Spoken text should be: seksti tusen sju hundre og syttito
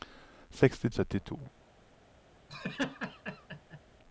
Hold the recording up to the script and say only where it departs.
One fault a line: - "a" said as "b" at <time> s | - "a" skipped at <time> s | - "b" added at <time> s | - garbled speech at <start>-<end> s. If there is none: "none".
- "tusen sju hundre" skipped at 0.9 s